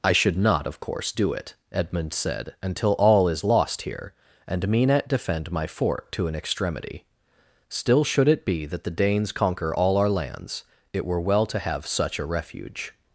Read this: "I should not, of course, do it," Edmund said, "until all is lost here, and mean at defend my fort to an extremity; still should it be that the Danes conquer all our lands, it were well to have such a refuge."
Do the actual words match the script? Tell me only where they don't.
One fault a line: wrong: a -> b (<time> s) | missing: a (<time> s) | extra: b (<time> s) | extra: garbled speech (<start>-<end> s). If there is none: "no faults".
no faults